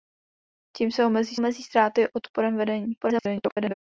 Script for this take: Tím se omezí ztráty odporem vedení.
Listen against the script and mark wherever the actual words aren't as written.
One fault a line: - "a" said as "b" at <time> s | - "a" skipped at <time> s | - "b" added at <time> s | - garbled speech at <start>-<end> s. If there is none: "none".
- "omezí" added at 1.3 s
- garbled speech at 3.0-3.7 s